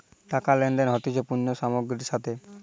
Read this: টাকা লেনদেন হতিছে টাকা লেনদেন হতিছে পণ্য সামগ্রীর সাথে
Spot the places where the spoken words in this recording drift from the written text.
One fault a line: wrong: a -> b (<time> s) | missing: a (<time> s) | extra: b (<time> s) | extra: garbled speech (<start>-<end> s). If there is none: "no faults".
missing: টাকা লেনদেন হতিছে (1.2 s)